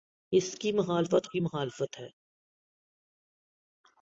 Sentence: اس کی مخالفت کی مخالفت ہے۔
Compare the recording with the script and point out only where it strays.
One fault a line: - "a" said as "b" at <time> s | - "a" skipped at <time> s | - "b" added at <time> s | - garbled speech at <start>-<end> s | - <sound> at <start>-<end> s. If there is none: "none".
none